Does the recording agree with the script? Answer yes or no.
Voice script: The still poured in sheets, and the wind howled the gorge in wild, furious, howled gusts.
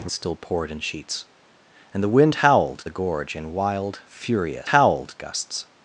yes